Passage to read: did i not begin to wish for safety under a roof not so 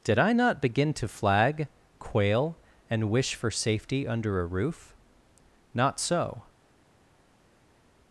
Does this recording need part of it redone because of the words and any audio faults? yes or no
yes